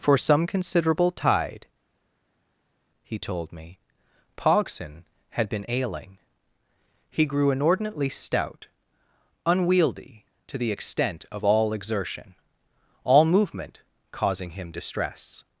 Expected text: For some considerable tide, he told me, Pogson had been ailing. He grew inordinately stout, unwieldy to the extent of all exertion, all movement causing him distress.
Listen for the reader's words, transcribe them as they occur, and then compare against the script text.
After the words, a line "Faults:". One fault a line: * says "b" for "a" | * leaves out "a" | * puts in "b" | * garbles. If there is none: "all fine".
For some considerable tide, he told me, Pogson had been ailing. He grew inordinately stout, unwieldy to the extent of all exertion, all movement causing him distress.
Faults:
all fine